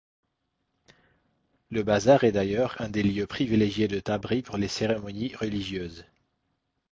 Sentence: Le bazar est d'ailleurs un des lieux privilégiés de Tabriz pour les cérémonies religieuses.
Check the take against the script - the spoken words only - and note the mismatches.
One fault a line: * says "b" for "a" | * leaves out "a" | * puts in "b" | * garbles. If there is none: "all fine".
all fine